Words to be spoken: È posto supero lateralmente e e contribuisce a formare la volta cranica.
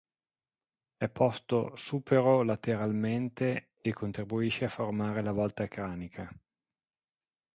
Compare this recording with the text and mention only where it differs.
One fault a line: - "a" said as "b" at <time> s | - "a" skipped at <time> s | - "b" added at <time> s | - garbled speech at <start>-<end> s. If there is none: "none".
- "e" skipped at 3.9 s